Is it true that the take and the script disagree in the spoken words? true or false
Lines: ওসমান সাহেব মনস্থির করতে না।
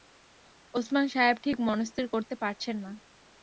true